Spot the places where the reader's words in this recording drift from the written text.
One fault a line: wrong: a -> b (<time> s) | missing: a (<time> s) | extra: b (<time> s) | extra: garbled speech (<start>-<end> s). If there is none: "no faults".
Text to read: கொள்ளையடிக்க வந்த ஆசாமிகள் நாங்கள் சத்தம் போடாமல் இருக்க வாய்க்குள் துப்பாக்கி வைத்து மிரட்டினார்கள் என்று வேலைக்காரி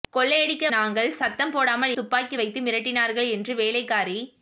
missing: வந்த ஆசாமிகள் (0.7 s)
missing: இருக்க வாய்க்குள் (1.9 s)